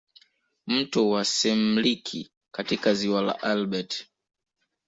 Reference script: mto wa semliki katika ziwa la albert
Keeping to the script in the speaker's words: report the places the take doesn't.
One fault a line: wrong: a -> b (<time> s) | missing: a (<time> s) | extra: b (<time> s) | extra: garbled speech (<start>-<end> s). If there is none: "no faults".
no faults